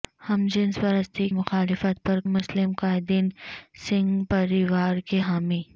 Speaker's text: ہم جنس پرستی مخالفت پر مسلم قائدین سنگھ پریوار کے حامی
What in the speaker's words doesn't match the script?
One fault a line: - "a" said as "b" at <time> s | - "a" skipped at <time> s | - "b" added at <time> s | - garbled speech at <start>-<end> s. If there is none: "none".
none